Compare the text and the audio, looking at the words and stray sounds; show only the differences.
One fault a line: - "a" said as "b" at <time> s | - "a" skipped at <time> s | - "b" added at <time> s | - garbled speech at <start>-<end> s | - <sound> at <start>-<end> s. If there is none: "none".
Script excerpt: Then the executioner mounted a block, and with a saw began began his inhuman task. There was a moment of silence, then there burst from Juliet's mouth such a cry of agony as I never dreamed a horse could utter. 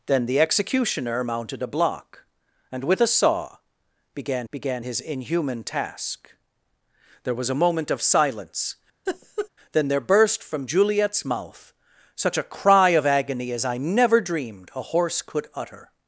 - laugh at 9.1-9.5 s